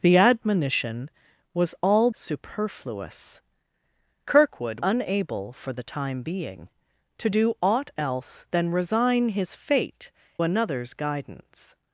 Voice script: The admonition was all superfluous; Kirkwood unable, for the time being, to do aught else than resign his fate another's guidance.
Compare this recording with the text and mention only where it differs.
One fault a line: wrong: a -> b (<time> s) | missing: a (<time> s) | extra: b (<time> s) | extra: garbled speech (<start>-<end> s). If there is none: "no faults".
no faults